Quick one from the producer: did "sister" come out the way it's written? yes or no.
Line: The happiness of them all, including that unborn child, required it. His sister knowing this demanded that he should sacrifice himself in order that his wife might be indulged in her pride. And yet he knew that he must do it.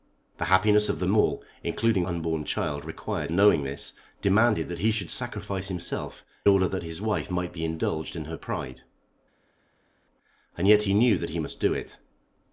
no